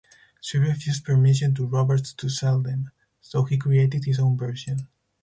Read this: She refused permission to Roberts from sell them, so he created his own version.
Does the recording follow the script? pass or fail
fail